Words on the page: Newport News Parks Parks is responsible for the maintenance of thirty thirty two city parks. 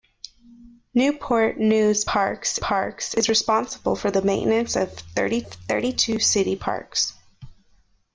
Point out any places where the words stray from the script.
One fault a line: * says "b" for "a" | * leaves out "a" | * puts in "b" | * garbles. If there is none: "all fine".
all fine